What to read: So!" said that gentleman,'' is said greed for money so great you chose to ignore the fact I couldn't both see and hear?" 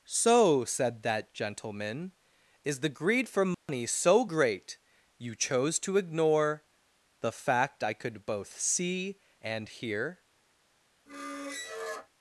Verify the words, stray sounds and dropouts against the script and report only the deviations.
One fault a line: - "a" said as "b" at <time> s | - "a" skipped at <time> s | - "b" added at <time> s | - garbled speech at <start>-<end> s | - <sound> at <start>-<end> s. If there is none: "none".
- "said" said as "the" at 2.8 s
- dropout at 3.5-3.7 s
- "couldn't" said as "could" at 7.9 s
- squeak at 11.1-12.1 s